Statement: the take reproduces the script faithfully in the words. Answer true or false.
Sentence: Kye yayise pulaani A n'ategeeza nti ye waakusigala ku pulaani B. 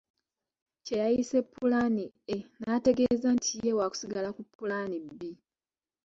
true